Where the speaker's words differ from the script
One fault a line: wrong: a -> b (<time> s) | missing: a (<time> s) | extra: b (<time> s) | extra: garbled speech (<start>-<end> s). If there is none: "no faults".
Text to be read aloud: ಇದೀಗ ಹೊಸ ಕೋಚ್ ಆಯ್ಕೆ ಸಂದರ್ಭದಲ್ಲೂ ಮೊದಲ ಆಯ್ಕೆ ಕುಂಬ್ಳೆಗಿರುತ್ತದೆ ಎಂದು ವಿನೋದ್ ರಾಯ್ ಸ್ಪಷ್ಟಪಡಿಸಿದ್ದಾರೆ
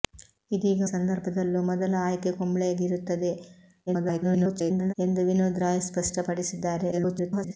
missing: ಹೊಸ ಕೋಚ್ ಆಯ್ಕೆ (0.9 s)
extra: garbled speech (3.9-4.9 s)
extra: garbled speech (6.9-7.6 s)